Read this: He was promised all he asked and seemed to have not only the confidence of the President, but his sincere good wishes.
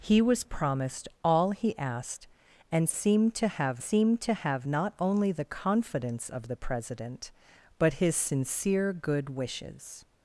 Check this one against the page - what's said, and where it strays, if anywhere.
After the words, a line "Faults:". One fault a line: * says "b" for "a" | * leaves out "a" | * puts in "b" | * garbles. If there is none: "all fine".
He was promised all he asked and seemed to have seemed to have not only the confidence of the President, but his sincere good wishes.
Faults:
* puts in "seemed to have"